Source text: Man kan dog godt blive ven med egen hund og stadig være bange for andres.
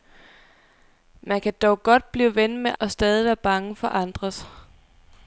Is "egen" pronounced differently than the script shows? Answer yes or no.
yes